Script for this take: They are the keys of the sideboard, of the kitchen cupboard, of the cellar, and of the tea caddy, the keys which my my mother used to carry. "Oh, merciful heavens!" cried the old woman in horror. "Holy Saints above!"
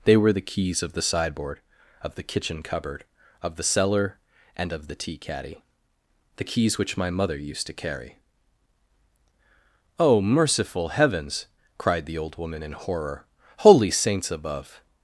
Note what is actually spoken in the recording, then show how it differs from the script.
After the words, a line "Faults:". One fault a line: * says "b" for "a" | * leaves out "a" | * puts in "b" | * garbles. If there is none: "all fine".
They were the keys of the sideboard, of the kitchen cupboard, of the cellar, and of the tea caddy, the keys which my mother used to carry. "Oh, merciful heavens!" cried the old woman in horror. "Holy Saints above!"
Faults:
* says "were" for "are"
* leaves out "my"